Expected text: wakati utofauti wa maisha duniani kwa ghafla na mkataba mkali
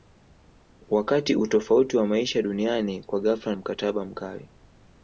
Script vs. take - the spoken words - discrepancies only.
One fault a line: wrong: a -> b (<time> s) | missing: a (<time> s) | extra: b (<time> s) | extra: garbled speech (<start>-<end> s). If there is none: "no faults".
missing: na (3.5 s)